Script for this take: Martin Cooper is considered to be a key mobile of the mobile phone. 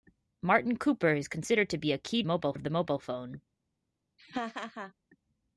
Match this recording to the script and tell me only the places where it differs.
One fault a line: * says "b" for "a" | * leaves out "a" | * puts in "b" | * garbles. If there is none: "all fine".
all fine